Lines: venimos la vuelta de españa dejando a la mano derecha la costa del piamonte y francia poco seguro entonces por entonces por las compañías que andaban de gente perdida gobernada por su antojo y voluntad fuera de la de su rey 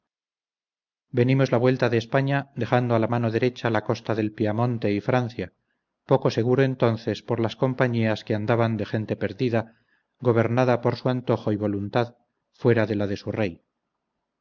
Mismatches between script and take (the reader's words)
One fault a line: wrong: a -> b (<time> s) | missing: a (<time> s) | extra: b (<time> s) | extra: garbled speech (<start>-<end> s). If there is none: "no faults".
missing: entonces por (7.4 s)